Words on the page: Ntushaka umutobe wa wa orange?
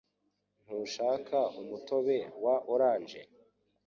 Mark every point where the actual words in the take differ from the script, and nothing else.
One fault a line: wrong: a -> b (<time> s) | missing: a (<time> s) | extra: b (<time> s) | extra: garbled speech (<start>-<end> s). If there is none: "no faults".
missing: wa (2.5 s)